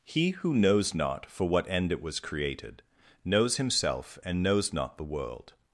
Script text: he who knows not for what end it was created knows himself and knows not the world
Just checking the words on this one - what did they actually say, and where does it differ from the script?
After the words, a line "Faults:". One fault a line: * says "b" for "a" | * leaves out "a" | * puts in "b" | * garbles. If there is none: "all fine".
he who knows not for what end it was created knows himself and knows not the world
Faults:
all fine